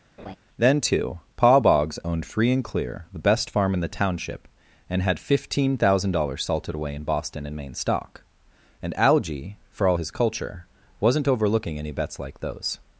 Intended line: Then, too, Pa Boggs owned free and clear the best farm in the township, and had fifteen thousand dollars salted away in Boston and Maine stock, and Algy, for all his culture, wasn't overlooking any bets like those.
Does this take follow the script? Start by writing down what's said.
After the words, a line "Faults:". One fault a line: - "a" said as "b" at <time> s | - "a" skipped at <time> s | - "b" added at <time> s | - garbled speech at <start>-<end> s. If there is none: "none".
Then, too, Pa Boggs owned free and clear the best farm in the township, and had fifteen thousand dollars salted away in Boston and Maine stock, and Algy, for all his culture, wasn't overlooking any bets like those.
Faults:
none